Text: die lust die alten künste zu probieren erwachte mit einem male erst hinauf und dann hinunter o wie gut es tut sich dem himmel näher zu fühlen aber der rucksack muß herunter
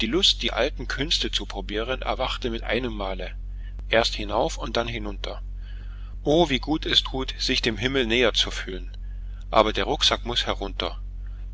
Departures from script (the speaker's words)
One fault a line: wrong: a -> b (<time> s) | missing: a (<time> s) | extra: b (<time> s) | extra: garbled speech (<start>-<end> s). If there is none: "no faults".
no faults